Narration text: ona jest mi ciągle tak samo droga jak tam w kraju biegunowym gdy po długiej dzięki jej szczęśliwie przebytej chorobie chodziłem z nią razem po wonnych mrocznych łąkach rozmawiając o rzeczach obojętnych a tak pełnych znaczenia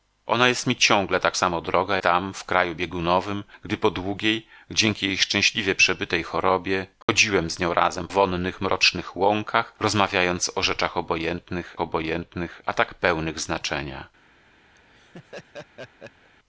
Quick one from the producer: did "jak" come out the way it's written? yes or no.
no